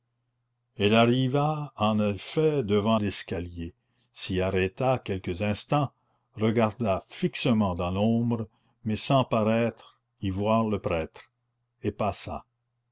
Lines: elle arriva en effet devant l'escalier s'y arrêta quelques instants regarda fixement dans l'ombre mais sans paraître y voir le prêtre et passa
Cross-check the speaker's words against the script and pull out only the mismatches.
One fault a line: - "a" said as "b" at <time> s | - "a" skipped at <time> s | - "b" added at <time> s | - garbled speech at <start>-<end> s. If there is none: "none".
none